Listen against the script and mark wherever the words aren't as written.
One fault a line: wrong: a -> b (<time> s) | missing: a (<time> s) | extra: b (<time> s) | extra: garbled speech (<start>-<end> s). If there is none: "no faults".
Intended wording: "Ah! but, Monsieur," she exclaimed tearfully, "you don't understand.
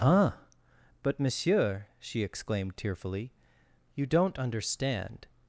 no faults